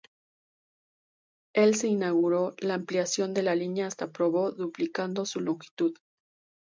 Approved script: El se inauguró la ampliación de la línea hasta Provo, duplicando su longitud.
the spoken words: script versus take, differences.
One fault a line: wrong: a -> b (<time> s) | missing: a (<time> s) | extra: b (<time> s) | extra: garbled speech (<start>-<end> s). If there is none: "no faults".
no faults